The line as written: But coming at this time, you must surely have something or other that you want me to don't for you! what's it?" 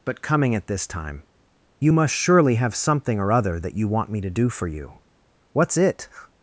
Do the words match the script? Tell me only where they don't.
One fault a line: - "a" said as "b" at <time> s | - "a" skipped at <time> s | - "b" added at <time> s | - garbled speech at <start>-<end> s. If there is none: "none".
- "don't" said as "do" at 4.3 s